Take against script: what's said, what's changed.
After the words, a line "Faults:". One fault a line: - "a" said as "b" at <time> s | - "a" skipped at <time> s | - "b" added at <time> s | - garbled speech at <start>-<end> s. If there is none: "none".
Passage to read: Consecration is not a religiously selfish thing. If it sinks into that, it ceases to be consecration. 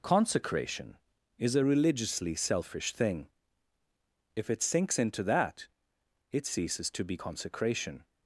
Consecration is a religiously selfish thing. If it sinks into that, it ceases to be consecration.
Faults:
- "not" skipped at 1.6 s